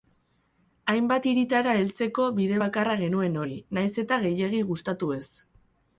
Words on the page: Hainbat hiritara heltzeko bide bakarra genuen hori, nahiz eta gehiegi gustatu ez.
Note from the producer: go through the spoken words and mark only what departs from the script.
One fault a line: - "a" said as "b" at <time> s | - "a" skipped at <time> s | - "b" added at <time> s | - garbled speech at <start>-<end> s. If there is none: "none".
none